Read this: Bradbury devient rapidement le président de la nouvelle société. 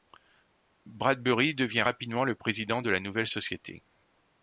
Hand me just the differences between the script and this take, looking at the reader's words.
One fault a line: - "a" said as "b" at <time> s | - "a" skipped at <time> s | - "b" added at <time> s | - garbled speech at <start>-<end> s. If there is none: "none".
none